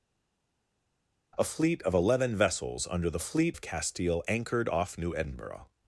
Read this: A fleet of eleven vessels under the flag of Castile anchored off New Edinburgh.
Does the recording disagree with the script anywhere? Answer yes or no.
yes